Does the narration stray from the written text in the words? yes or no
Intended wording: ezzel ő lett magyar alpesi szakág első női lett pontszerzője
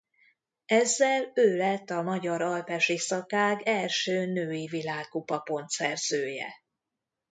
yes